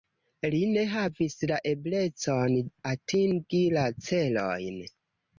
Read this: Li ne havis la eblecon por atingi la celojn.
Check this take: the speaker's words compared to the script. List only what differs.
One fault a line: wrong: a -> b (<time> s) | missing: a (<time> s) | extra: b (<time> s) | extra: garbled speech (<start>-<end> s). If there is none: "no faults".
missing: por (2.5 s)